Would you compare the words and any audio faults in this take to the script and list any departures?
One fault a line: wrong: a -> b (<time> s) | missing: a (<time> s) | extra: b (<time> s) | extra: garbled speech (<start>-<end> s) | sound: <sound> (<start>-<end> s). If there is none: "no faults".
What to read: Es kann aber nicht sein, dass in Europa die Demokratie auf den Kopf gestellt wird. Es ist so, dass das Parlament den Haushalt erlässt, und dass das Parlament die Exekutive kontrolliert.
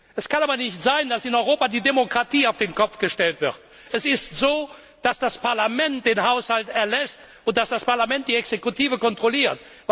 no faults